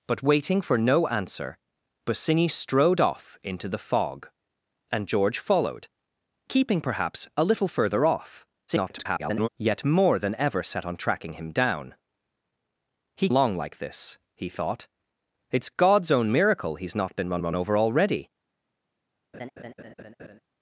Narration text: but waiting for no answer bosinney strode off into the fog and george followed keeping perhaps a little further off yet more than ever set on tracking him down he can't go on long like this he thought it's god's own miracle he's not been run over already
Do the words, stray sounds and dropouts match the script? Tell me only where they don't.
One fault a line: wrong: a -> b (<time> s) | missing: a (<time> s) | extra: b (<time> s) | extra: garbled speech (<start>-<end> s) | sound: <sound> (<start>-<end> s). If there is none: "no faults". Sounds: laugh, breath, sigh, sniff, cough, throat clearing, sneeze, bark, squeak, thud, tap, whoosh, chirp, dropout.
extra: garbled speech (8.7-9.5 s)
missing: can't go on (13.3 s)
extra: run (17.4 s)
sound: laugh (19.3-20.4 s)